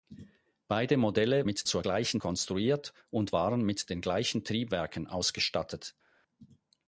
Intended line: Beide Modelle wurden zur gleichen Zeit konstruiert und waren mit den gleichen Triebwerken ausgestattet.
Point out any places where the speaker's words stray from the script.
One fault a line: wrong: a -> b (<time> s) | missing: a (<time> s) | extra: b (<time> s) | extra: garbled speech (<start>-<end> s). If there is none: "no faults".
wrong: wurden -> mit (1.4 s)
missing: Zeit (2.2 s)